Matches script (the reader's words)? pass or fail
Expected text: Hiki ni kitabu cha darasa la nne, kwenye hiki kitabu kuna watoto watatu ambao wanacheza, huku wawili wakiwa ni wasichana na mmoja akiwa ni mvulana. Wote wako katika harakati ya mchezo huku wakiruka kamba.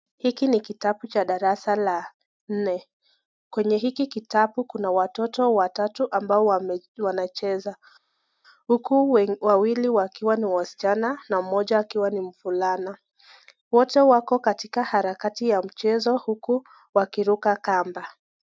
pass